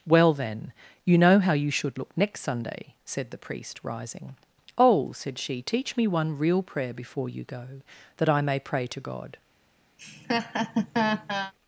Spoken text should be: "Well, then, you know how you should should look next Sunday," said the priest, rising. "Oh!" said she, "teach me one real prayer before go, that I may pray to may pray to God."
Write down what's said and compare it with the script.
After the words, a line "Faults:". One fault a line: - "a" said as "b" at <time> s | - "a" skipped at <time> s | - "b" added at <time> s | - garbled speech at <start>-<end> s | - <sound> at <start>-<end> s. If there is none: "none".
"Well, then, you know how you should look next Sunday," said the priest, rising. "Oh!" said she, "teach me one real prayer before you go, that I may pray to God."
Faults:
- "should" skipped at 2.0 s
- "you" added at 7.3 s
- "may pray to" skipped at 9.0 s
- laugh at 10.0-11.5 s